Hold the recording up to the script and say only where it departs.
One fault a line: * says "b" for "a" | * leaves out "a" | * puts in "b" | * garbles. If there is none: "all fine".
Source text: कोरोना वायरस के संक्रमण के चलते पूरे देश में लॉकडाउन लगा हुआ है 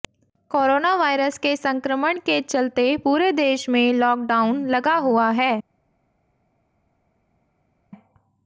all fine